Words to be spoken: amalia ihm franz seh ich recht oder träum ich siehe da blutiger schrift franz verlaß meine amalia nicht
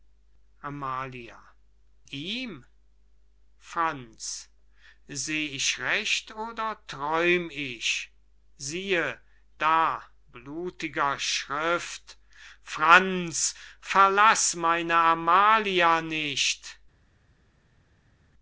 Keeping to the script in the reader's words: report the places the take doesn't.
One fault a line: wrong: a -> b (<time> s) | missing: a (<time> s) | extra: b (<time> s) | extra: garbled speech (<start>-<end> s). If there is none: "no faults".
no faults